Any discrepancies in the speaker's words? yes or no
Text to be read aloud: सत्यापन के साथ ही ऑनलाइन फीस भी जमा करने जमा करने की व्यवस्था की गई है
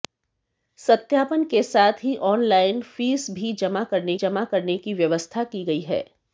no